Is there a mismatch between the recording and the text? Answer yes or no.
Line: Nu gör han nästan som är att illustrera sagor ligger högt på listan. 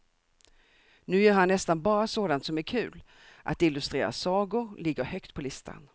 yes